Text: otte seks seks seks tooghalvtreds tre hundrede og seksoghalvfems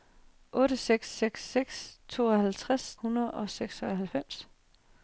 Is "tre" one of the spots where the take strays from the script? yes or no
yes